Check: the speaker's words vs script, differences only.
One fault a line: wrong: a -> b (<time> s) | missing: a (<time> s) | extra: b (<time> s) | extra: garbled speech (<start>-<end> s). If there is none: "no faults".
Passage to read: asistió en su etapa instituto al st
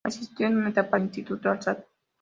no faults